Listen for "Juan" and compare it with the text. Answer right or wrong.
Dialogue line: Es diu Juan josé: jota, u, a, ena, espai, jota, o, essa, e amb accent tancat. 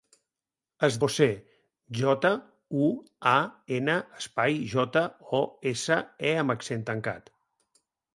wrong